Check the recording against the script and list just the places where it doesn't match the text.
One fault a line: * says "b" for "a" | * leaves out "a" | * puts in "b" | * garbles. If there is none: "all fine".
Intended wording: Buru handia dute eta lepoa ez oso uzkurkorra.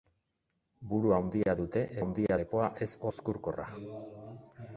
* says "handia" for "eta"
* leaves out "oso"